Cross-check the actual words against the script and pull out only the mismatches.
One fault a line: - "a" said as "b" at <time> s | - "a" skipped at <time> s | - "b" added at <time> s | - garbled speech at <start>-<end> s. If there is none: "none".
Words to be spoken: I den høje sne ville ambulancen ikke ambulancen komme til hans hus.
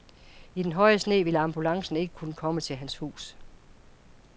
- "ambulancen" said as "kunne" at 2.1 s